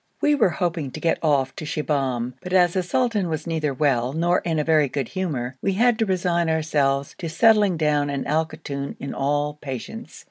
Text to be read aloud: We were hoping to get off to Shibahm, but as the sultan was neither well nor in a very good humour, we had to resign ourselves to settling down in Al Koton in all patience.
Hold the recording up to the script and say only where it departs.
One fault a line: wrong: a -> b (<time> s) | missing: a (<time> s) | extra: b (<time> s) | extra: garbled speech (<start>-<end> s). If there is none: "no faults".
no faults